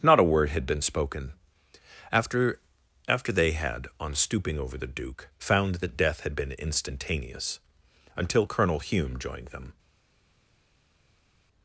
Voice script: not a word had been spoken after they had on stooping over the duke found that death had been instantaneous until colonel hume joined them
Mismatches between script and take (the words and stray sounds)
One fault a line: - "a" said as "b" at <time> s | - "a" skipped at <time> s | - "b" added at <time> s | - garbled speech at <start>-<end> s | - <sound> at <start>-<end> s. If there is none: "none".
- "after" added at 3.1 s